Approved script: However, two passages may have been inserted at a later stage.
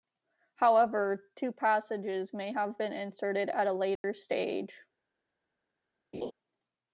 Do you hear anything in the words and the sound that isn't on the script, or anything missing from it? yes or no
yes